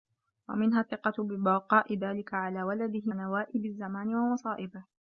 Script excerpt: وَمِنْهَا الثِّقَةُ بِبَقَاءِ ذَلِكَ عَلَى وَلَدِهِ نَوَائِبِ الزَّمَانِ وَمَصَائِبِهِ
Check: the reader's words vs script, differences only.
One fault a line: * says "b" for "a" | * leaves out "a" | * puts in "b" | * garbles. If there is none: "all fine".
all fine